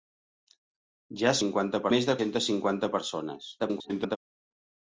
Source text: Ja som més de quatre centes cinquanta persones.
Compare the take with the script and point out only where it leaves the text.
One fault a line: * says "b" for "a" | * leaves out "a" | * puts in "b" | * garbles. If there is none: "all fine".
* says "cinquanta" for "som"
* leaves out "quatre"
* garbles